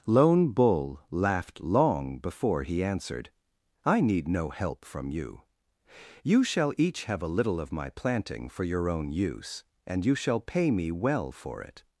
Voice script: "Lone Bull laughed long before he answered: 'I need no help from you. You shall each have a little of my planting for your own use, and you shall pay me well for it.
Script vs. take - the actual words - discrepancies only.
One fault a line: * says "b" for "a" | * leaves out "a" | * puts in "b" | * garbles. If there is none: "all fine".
all fine